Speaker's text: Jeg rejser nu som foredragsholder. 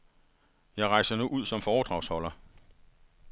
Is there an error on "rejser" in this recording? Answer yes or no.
no